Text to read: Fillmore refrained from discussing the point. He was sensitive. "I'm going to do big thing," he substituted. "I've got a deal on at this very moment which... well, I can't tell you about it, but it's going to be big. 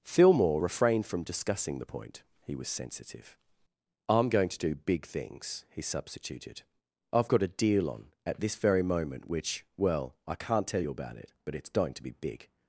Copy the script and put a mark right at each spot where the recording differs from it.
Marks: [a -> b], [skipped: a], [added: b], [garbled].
Fillmore refrained from discussing the point. He was sensitive. "I'm going to do big [thing," -> things] he substituted. "I've got a deal on at this very moment which... well, I can't tell you about it, but it's going to be big.